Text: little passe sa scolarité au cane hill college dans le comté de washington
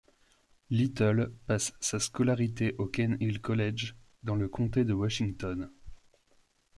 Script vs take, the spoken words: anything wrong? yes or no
no